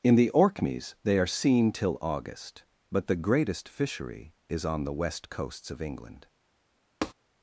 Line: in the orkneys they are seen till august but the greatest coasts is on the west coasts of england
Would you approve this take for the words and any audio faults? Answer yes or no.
no